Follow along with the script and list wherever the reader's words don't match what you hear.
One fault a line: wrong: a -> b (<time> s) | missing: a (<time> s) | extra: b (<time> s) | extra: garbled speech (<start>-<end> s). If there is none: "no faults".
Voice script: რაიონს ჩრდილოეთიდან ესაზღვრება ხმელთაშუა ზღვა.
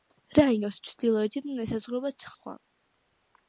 missing: ხმელთაშუა (2.1 s)